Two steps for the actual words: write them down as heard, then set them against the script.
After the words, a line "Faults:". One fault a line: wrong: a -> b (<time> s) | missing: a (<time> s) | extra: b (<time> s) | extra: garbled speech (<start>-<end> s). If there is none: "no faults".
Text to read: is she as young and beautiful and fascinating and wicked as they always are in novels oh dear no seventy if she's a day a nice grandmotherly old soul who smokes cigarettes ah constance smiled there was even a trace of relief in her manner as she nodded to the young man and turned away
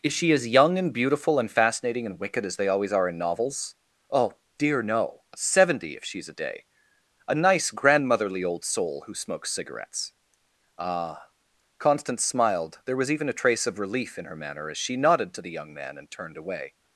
is she as young and beautiful and fascinating and wicked as they always are in novels oh dear no seventy if she's a day a nice grandmotherly old soul who smokes cigarettes ah constance smiled there was even a trace of relief in her manner as she nodded to the young man and turned away
Faults:
no faults